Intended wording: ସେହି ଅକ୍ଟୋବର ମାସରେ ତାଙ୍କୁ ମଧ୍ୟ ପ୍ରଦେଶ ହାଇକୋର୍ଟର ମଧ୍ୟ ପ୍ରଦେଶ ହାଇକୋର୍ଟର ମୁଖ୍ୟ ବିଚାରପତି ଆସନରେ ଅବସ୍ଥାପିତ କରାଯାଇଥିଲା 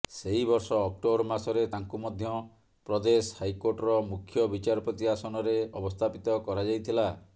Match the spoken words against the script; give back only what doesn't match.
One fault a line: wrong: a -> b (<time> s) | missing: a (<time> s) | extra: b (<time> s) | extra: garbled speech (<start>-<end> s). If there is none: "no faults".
extra: ବର୍ଷ (0.5 s)
missing: ମଧ୍ୟ ପ୍ରଦେଶ ହାଇକୋର୍ଟର (4.0 s)